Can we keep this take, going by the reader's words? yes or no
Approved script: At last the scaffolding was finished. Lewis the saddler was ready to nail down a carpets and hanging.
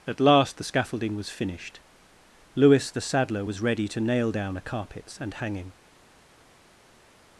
yes